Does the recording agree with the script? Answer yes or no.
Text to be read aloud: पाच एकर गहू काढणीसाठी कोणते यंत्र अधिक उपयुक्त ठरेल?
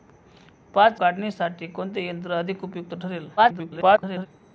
no